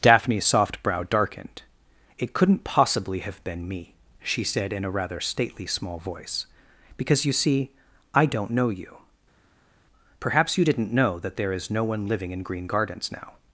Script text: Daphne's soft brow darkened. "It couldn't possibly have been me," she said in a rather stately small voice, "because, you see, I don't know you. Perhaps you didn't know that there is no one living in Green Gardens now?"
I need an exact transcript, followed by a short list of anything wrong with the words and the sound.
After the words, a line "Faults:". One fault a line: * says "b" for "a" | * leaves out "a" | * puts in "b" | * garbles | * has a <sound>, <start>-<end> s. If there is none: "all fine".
Daphne's soft brow darkened. "It couldn't possibly have been me," she said in a rather stately small voice, "because, you see, I don't know you. Perhaps you didn't know that there is no one living in Green Gardens now?"
Faults:
all fine